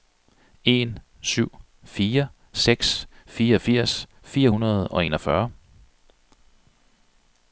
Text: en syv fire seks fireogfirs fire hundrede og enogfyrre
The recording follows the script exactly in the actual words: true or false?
true